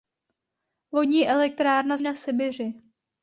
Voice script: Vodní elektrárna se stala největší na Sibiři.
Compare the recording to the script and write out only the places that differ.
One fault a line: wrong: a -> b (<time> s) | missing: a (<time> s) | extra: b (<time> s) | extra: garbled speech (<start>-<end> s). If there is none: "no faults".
missing: se stala největší (2.0 s)